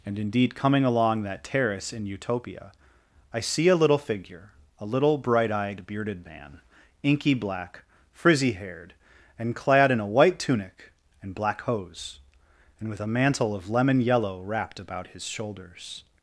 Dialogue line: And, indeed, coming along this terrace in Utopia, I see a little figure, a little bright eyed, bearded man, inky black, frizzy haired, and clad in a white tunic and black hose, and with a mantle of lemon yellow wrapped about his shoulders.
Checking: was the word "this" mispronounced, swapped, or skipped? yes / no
yes